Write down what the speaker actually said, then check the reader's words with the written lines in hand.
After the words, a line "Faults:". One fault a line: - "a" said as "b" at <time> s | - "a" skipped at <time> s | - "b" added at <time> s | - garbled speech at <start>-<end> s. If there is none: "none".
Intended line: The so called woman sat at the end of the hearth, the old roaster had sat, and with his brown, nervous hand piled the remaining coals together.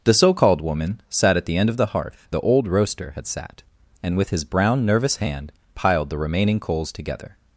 The so called woman sat at the end of the hearth, the old roaster had sat, and with his brown, nervous hand piled the remaining coals together.
Faults:
none